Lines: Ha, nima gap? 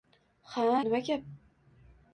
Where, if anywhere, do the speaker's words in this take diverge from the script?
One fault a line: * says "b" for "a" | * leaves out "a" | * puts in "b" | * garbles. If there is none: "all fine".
all fine